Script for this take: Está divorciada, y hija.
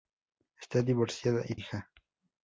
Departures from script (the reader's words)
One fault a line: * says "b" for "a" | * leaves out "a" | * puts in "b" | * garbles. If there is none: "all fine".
all fine